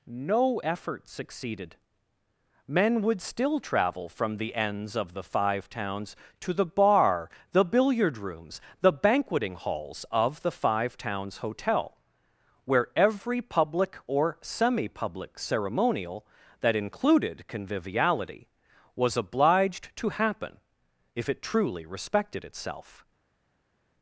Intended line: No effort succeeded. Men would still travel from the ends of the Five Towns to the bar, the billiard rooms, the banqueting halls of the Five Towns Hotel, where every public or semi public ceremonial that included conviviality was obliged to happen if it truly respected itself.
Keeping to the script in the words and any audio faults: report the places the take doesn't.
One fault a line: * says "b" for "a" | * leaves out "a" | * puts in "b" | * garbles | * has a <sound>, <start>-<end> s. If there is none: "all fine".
all fine